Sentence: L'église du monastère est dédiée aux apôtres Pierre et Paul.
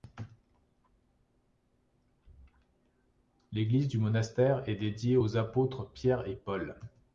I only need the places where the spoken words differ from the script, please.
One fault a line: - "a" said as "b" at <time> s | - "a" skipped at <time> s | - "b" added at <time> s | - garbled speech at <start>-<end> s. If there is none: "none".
none